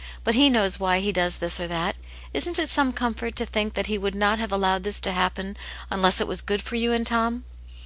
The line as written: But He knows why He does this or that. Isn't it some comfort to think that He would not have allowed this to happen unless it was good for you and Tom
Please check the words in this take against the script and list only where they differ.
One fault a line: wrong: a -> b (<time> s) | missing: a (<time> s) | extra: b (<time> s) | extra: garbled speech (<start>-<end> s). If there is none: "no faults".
no faults